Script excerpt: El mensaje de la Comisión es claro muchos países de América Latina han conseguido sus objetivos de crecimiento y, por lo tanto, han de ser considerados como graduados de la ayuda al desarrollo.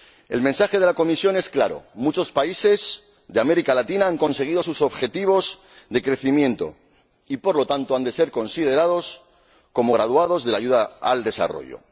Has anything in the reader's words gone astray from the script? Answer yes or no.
no